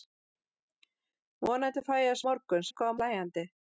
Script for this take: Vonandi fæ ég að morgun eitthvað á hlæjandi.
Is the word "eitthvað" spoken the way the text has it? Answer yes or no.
yes